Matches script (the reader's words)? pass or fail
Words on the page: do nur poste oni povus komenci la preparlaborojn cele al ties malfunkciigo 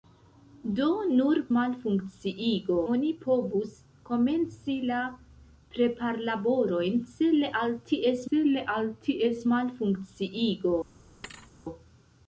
fail